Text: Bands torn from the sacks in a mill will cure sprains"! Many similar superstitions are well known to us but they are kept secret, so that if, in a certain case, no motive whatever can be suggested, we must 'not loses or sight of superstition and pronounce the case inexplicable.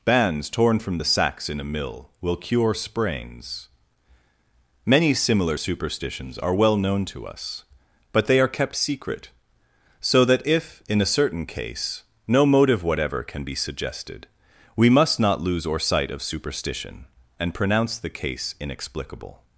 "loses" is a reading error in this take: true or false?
true